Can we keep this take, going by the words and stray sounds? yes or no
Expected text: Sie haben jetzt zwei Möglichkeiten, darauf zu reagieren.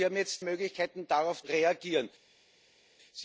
no